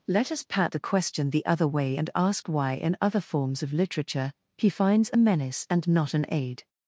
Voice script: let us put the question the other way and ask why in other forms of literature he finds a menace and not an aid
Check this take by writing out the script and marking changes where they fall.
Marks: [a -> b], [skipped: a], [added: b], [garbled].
let us [put -> pat] the question the other way and ask why in other forms of literature he finds a menace and not an aid